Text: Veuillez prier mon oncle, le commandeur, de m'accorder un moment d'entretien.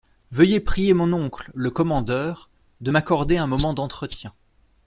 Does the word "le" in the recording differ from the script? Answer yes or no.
no